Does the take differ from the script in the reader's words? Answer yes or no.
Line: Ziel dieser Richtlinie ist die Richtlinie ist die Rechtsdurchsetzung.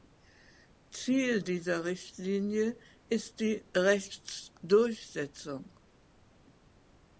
yes